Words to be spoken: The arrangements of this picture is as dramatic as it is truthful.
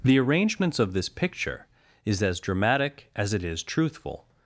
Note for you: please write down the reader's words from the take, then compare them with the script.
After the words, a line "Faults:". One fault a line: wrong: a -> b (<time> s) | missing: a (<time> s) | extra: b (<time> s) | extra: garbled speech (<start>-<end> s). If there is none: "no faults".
The arrangements of this picture is as dramatic as it is truthful.
Faults:
no faults